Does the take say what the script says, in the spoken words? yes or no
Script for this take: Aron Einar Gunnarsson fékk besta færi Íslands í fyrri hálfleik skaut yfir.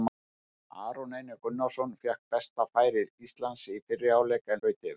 yes